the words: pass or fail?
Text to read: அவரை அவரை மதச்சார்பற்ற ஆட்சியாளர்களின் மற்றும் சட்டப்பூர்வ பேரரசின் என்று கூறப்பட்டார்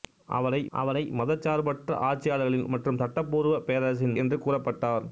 pass